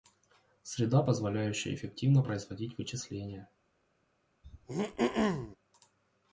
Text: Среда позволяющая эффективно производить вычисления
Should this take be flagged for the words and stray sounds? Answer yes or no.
yes